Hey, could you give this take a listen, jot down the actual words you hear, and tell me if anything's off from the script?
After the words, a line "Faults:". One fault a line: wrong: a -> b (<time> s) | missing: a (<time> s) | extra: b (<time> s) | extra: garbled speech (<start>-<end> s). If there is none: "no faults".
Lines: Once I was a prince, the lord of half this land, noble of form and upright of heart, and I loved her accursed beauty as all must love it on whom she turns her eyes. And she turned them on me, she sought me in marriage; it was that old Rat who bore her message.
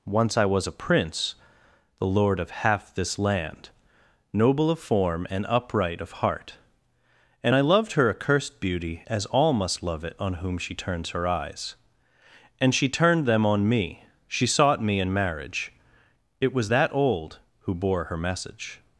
Once I was a prince, the lord of half this land, noble of form and upright of heart, and I loved her accursed beauty as all must love it on whom she turns her eyes. And she turned them on me, she sought me in marriage; it was that old who bore her message.
Faults:
missing: Rat (17.4 s)